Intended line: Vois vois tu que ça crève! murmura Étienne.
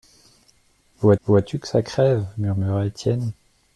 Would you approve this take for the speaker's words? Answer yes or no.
yes